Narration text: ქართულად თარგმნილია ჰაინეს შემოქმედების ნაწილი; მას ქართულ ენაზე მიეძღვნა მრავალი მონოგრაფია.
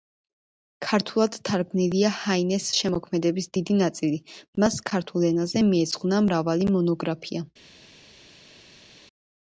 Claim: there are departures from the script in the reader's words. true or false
true